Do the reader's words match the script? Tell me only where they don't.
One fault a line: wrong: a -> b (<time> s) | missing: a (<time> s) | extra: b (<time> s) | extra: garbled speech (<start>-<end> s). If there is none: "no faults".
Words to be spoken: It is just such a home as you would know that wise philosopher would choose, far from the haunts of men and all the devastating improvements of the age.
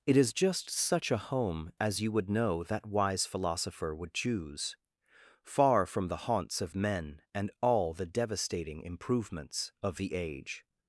no faults